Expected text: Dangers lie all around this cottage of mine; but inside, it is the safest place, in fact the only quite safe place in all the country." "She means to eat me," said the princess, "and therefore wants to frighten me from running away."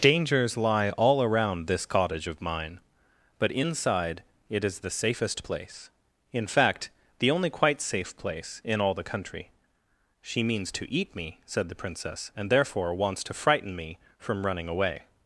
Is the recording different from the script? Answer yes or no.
no